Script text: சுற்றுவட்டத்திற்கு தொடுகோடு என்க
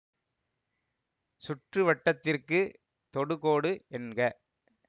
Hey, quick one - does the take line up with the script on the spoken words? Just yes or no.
yes